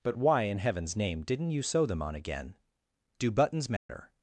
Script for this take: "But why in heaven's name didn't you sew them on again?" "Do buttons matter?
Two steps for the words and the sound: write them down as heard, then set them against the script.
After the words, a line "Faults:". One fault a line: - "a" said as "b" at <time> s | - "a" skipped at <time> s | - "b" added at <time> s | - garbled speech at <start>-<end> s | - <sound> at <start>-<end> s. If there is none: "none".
"But why in heaven's name didn't you sew them on again?" "Do buttons matter?
Faults:
- dropout at 3.8-3.9 s